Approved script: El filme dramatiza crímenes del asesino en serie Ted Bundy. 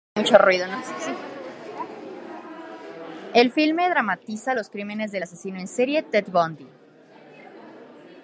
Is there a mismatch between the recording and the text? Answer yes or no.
yes